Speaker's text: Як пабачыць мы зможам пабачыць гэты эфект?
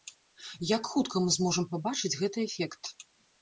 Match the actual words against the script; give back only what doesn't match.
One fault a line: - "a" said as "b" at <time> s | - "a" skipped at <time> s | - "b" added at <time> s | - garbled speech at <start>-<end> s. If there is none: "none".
- "пабачыць" said as "хутка" at 0.9 s